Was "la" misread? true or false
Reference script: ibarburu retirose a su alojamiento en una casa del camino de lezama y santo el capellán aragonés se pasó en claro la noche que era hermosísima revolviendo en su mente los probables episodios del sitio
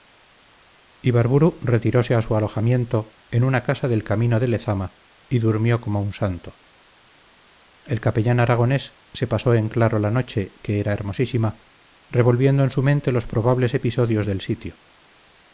false